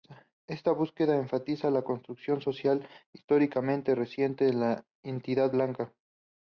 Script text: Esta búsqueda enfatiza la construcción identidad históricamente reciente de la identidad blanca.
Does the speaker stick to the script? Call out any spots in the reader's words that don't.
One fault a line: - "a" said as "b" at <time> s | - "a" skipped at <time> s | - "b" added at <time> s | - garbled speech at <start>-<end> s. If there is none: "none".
- "identidad" said as "social" at 2.4 s